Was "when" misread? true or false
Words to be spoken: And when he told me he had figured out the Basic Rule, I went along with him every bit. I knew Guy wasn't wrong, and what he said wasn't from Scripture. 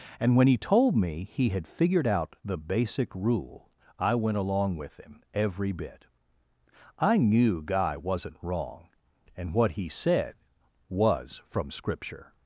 false